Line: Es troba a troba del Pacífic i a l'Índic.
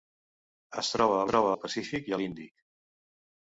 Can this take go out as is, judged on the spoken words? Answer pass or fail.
pass